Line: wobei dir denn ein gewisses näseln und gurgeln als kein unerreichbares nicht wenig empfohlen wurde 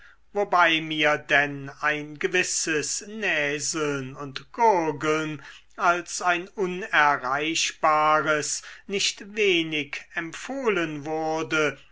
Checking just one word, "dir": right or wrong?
wrong